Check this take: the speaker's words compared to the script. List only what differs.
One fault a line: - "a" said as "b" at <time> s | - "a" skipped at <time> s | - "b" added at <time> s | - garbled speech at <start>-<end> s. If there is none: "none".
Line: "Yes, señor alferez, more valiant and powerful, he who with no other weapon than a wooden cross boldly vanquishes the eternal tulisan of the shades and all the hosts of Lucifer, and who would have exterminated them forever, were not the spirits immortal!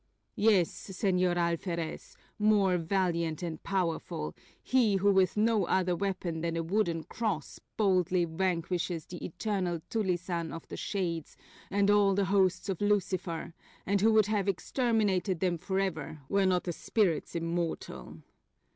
none